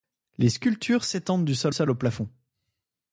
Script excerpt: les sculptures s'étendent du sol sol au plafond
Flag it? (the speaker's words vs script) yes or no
no